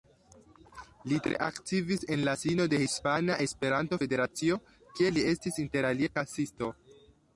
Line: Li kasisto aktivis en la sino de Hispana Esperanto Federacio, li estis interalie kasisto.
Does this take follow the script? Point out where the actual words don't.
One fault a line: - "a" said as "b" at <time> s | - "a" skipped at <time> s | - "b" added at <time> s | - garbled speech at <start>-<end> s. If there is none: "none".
- "kasisto" said as "tre" at 1.2 s
- "kie" added at 5.0 s